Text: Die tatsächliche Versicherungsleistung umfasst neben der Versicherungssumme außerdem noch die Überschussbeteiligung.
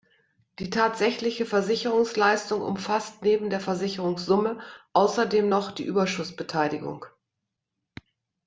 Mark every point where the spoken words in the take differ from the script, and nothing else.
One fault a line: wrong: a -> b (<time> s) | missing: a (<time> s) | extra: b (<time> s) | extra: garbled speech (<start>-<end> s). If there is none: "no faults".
no faults